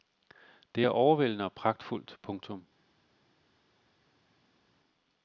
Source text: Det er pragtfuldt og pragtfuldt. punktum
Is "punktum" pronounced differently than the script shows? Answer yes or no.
no